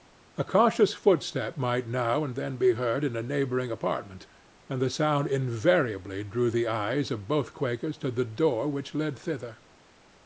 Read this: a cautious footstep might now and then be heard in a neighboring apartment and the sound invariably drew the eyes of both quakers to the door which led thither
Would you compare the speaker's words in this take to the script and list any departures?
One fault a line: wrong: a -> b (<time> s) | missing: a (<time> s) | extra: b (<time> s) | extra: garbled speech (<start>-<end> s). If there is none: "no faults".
no faults